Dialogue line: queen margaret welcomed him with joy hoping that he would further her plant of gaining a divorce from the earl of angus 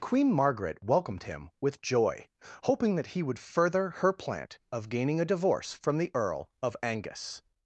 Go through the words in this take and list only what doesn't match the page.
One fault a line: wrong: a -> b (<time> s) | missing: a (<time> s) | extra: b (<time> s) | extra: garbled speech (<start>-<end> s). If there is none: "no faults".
no faults